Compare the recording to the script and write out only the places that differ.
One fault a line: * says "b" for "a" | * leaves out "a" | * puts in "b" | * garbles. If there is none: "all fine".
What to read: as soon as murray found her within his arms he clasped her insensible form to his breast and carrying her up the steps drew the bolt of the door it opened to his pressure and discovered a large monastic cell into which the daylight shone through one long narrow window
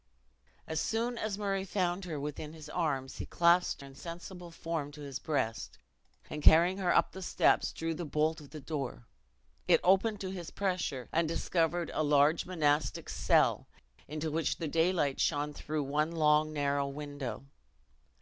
* leaves out "her"